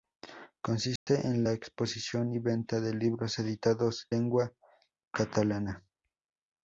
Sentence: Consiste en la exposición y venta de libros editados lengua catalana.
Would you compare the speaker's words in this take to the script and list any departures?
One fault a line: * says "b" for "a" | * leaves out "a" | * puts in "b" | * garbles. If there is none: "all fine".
all fine